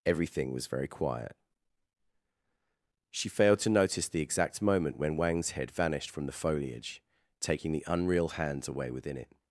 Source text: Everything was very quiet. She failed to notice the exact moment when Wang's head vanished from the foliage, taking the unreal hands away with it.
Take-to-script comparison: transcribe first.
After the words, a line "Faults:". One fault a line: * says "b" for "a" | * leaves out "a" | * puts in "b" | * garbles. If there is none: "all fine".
Everything was very quiet. She failed to notice the exact moment when Wang's head vanished from the foliage, taking the unreal hands away within it.
Faults:
* says "within" for "with"